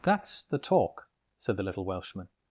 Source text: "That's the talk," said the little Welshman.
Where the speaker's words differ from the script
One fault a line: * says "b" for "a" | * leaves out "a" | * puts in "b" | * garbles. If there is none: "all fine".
all fine